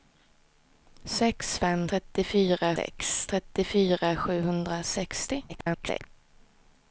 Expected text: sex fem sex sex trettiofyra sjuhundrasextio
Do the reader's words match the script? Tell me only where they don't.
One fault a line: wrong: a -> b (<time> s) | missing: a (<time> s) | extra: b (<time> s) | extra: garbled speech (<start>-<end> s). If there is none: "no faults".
wrong: sex -> trettiofyra (1.9 s)
extra: garbled speech (5.5-6.1 s)